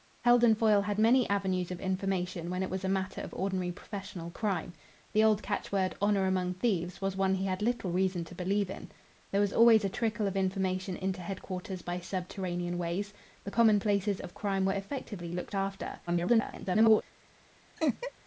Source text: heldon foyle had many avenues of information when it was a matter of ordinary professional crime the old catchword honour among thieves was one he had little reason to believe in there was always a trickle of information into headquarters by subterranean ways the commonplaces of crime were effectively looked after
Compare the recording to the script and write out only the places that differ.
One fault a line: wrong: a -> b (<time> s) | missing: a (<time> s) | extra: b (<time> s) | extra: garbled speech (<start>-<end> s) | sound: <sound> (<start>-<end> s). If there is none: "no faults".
extra: garbled speech (16.1-17.0 s)
sound: laugh (17.8-18.1 s)